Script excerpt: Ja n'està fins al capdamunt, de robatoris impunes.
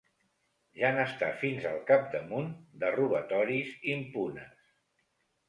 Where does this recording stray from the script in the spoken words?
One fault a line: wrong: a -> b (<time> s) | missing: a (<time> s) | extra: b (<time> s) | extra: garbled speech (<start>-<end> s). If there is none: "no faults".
no faults